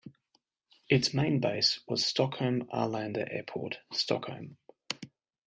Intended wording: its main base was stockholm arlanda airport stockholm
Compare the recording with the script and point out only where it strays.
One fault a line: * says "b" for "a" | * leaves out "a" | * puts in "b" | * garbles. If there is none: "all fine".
all fine